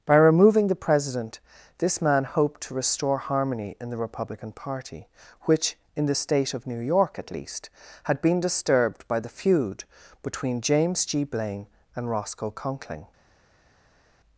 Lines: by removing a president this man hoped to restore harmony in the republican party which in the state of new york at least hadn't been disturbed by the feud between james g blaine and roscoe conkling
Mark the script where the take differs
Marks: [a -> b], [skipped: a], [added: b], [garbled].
by removing [a -> the] president this man hoped to restore harmony in the republican party which in the state of new york at least [hadn't -> had] been disturbed by the feud between james g blaine and roscoe conkling